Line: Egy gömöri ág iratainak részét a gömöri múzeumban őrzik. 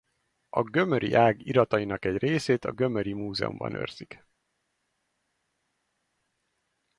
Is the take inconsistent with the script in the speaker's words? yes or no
yes